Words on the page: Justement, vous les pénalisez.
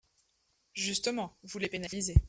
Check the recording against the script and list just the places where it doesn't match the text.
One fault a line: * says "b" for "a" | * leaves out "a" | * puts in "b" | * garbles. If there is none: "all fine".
all fine